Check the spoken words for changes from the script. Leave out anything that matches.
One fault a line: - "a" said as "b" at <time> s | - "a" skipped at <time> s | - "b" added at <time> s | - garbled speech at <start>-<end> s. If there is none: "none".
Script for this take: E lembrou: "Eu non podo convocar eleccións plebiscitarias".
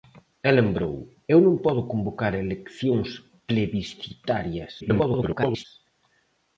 - garbled speech at 4.8-5.7 s